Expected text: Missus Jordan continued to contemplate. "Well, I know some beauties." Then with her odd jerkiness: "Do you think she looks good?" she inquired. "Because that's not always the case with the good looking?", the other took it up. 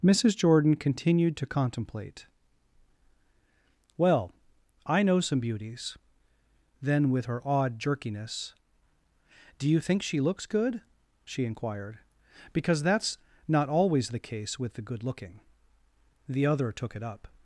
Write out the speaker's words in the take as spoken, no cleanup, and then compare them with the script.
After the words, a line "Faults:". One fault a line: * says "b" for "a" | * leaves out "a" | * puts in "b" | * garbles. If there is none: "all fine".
Missus Jordan continued to contemplate. "Well, I know some beauties." Then with her odd jerkiness: "Do you think she looks good?" she inquired. "Because that's not always the case with the good looking?", the other took it up.
Faults:
all fine